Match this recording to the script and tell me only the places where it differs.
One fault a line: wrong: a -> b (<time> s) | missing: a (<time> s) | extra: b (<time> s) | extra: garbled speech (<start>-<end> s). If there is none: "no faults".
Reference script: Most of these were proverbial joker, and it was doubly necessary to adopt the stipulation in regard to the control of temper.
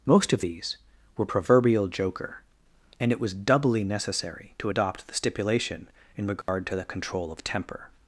no faults